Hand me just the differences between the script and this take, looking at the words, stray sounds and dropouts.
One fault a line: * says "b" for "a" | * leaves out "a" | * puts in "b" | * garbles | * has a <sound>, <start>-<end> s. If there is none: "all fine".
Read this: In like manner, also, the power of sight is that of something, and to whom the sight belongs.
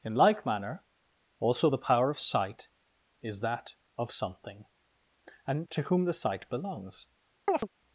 * has a chirp, 7.5-7.7 s